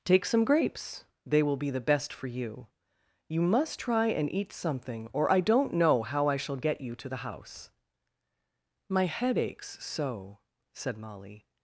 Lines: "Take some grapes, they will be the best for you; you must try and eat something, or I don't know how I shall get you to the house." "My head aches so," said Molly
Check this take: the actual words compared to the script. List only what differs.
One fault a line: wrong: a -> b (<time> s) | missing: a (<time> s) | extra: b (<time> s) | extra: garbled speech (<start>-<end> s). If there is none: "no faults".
no faults